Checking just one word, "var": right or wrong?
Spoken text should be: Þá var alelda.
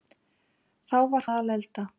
right